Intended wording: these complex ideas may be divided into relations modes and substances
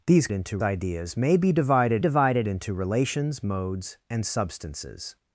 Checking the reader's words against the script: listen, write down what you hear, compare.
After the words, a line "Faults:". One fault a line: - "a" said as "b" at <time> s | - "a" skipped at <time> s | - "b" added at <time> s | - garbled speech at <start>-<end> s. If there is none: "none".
these into ideas may be divided divided into relations modes and substances
Faults:
- "complex" said as "into" at 0.3 s
- "divided" added at 2.0 s